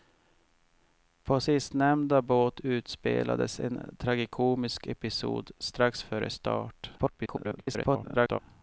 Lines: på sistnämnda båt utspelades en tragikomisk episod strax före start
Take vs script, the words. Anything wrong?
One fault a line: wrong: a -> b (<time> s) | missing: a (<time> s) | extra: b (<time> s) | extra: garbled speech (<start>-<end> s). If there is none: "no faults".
extra: garbled speech (7.0-8.4 s)